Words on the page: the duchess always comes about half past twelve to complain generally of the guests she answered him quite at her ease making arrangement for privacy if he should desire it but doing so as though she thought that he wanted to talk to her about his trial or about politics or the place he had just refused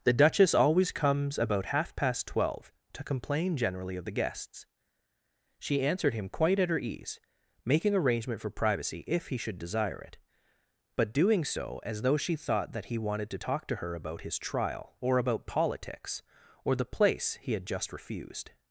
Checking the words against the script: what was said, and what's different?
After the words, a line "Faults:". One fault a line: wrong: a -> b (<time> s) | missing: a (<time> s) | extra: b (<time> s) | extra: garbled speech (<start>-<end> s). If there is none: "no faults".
the duchess always comes about half past twelve to complain generally of the guests she answered him quite at her ease making arrangement for privacy if he should desire it but doing so as though she thought that he wanted to talk to her about his trial or about politics or the place he had just refused
Faults:
no faults